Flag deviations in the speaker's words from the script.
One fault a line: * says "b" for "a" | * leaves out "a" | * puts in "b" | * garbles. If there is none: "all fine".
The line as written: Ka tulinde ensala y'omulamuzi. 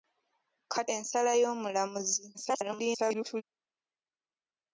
* leaves out "tulinde"
* garbles